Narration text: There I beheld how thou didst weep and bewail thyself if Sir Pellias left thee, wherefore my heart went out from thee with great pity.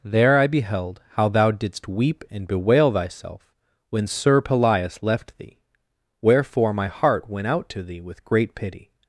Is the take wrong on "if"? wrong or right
wrong